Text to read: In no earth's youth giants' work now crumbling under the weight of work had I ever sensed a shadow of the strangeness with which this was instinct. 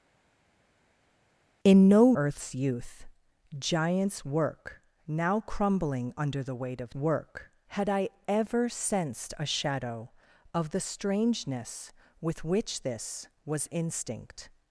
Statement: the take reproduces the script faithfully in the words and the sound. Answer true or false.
true